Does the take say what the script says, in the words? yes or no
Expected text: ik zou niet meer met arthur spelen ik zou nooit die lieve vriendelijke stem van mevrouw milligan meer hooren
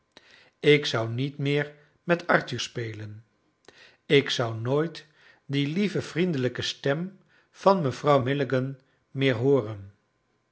yes